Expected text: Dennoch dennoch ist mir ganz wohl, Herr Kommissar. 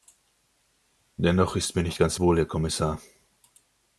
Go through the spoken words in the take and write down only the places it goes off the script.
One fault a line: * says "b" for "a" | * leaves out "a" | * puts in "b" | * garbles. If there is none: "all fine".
* leaves out "dennoch"
* puts in "nicht"